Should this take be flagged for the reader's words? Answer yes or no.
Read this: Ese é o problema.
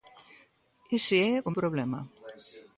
no